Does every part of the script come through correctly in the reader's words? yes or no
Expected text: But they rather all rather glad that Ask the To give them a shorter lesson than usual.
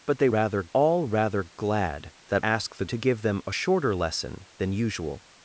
yes